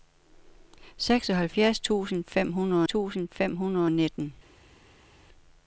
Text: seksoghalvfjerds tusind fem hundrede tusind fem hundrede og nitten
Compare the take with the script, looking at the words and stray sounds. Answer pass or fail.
pass